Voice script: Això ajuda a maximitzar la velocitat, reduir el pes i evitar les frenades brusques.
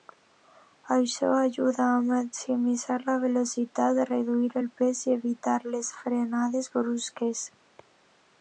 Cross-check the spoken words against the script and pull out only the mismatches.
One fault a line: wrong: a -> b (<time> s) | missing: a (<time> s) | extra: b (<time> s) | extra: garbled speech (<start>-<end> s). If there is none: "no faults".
no faults